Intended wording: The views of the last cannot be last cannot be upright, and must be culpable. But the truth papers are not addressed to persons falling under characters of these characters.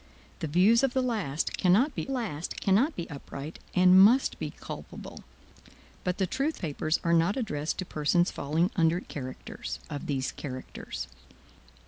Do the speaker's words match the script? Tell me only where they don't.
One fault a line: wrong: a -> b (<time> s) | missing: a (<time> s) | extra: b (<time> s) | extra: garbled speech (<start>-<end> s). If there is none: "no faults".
no faults